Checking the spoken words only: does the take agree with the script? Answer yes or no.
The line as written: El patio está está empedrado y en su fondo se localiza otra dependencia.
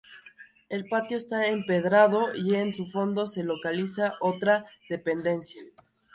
no